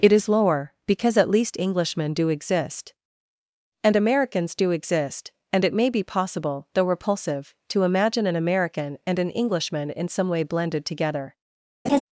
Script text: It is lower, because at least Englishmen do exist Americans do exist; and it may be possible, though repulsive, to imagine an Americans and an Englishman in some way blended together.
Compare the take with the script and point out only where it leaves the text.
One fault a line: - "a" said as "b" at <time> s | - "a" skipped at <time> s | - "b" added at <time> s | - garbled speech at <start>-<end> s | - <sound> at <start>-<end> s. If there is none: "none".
- "and" added at 3.8 s
- "Americans" said as "American" at 8.3 s
- laugh at 11.9-12.0 s